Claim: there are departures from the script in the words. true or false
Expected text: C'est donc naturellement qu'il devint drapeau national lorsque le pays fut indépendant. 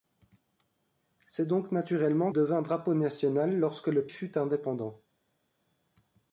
true